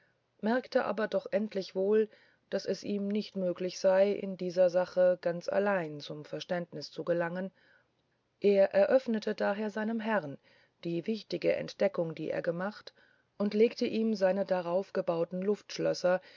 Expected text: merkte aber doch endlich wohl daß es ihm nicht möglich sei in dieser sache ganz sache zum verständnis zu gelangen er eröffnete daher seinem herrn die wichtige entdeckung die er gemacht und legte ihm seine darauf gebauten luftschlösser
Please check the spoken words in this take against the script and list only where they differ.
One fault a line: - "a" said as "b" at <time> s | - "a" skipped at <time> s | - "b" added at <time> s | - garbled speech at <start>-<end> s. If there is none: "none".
- "sache" said as "allein" at 5.5 s